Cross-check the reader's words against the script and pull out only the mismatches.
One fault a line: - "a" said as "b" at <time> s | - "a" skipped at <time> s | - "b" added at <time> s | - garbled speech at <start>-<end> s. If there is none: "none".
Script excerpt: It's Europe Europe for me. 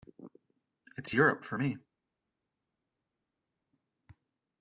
- "Europe" skipped at 1.4 s